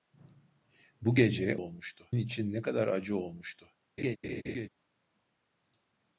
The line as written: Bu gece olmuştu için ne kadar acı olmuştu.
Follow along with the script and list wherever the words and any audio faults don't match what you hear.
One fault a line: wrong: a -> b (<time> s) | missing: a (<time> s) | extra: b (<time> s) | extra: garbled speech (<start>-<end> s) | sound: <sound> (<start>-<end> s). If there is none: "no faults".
sound: laugh (4.0-4.7 s)